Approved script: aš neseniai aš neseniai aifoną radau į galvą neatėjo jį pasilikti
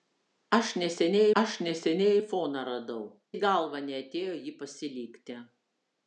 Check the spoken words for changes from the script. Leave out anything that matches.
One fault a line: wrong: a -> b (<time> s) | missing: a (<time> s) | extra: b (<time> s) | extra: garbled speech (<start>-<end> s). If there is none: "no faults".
no faults